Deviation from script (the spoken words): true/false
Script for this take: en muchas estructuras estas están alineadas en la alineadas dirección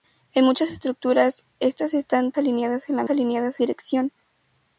false